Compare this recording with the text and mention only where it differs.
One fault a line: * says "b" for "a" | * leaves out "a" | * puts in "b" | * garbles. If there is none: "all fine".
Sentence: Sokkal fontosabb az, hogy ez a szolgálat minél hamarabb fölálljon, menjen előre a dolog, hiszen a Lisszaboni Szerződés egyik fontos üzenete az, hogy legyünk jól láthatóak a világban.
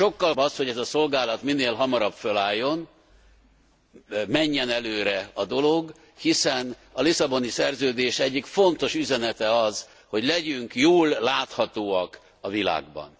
* leaves out "fontosabb"